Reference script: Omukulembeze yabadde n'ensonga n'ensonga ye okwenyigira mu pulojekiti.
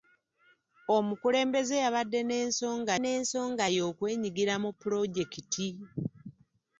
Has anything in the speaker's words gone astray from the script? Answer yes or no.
no